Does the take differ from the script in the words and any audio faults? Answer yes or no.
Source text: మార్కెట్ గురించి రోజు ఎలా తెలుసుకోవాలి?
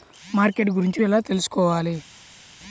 yes